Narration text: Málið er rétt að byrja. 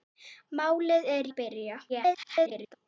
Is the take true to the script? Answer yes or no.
no